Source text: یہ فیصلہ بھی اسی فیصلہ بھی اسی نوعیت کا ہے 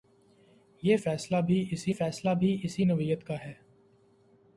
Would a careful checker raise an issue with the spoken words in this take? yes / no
no